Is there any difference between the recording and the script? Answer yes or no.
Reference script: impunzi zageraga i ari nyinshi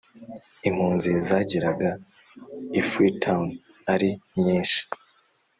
yes